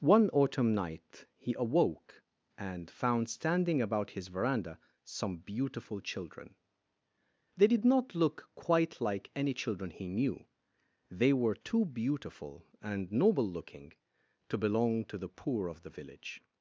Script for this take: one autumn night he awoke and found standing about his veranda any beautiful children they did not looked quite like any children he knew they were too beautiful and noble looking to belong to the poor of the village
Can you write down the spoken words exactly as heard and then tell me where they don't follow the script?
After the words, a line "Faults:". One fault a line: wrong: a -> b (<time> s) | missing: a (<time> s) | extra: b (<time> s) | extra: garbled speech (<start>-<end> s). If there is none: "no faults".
one autumn night he awoke and found standing about his veranda some beautiful children they did not look quite like any children he knew they were too beautiful and noble looking to belong to the poor of the village
Faults:
wrong: any -> some (5.0 s)
wrong: looked -> look (8.1 s)